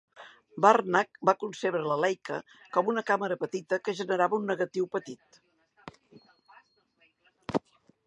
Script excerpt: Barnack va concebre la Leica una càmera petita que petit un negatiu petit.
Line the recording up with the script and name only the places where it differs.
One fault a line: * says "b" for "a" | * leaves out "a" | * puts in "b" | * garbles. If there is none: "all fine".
* puts in "com"
* says "generava" for "petit"